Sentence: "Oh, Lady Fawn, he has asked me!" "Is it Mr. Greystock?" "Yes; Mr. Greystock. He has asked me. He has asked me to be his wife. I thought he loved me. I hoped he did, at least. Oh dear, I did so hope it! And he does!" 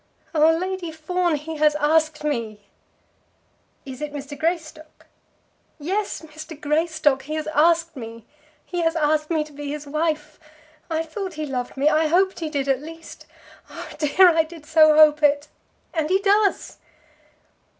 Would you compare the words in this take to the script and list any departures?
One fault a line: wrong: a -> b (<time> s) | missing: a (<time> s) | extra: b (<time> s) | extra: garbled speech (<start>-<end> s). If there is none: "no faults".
no faults